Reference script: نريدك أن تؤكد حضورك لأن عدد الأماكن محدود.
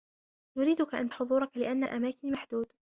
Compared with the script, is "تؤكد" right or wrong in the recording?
wrong